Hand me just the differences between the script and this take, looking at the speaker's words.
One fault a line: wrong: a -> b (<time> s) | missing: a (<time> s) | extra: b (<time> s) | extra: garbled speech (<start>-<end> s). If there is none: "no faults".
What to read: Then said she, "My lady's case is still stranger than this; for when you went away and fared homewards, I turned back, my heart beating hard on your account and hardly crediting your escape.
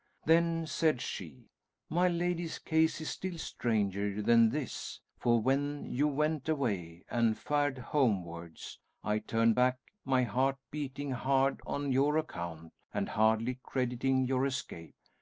no faults